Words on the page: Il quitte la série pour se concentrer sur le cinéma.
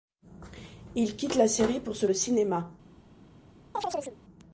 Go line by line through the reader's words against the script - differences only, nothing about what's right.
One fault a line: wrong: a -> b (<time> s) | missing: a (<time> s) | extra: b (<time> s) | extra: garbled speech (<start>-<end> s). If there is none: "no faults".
missing: concentrer sur (2.1 s)